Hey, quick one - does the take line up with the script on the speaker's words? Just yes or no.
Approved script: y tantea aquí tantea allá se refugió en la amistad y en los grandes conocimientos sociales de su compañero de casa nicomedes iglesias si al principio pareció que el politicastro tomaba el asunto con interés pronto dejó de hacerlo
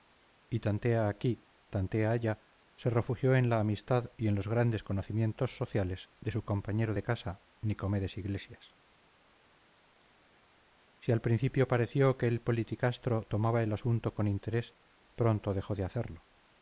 yes